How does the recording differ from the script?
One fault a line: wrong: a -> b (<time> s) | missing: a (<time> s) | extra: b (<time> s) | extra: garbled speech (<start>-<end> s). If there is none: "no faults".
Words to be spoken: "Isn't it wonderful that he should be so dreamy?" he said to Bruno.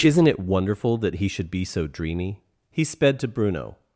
wrong: said -> sped (2.8 s)